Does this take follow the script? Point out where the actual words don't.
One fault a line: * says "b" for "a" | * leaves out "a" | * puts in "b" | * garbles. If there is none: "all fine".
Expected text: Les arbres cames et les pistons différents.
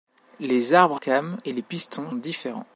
all fine